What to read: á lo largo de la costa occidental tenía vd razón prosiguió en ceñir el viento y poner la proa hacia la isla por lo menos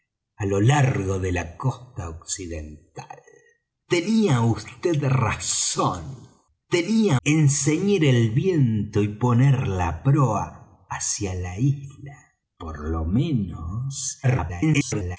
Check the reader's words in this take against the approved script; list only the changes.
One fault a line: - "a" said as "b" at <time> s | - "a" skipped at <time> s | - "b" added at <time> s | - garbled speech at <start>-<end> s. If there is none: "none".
- "prosiguió" said as "tenía" at 6.7 s
- garbled speech at 14.2-15.2 s